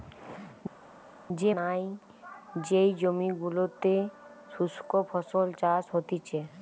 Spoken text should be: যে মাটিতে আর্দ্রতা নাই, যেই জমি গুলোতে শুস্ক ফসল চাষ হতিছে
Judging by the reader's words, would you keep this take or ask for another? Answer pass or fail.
fail